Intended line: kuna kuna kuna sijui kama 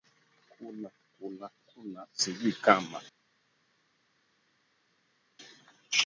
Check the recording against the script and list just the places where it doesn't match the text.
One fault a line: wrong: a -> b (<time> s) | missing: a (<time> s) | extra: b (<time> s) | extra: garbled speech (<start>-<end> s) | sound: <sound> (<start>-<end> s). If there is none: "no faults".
no faults